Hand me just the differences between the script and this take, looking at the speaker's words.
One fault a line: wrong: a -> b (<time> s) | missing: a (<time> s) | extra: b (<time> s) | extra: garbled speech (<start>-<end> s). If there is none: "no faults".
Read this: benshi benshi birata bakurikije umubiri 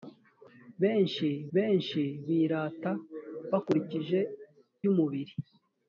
no faults